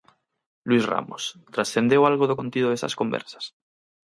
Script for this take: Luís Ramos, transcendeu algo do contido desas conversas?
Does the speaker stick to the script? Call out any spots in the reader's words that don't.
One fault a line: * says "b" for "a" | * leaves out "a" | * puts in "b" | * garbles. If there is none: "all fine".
all fine